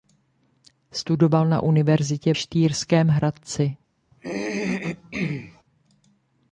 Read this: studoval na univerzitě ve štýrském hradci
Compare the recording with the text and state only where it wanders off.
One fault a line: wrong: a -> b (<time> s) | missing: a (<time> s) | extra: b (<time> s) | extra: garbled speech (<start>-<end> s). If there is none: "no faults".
missing: ve (2.3 s)